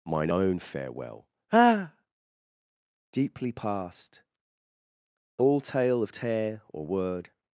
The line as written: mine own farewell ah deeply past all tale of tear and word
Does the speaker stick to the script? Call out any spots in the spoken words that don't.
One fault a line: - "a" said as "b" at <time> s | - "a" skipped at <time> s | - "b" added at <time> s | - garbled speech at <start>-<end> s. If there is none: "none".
- "and" said as "or" at 6.7 s